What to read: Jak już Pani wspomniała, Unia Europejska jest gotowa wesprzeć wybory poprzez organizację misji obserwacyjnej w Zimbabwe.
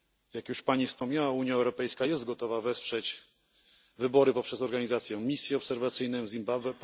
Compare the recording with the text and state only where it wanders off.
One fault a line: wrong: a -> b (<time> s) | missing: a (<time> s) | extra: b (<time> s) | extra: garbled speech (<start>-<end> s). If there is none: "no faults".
no faults